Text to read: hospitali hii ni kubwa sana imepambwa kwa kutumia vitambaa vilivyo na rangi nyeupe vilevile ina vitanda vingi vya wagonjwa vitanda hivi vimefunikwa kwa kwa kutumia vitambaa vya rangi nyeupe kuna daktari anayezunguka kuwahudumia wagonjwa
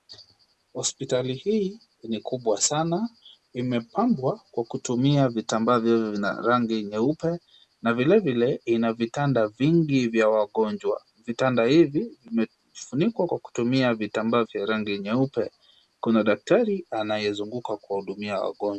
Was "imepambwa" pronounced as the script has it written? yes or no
yes